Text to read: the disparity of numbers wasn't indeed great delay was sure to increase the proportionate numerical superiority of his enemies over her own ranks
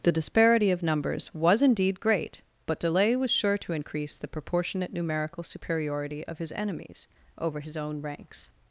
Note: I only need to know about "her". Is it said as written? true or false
false